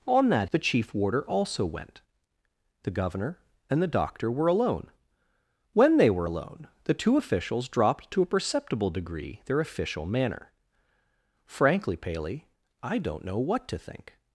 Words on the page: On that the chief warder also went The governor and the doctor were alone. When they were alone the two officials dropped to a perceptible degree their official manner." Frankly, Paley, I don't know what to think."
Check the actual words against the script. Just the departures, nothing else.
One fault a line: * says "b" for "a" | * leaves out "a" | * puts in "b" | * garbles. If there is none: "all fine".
all fine